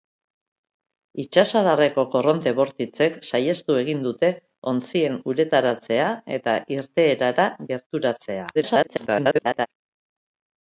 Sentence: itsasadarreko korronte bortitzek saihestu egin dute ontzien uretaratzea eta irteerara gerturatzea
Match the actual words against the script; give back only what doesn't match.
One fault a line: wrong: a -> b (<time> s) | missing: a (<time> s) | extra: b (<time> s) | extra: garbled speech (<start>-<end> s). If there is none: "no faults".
extra: garbled speech (8.5-9.7 s)